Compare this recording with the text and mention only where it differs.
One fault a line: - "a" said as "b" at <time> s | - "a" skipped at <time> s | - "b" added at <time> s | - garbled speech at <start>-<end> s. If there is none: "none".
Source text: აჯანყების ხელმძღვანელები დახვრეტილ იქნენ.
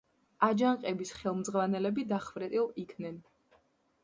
none